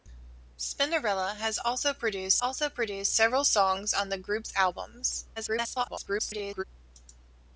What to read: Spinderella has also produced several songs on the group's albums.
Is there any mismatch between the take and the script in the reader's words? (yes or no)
yes